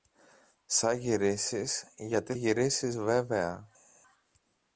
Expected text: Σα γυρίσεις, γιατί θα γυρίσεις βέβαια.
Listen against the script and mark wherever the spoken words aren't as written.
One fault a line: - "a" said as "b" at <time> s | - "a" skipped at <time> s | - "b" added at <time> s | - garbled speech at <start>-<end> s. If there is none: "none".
- "θα" skipped at 2.3 s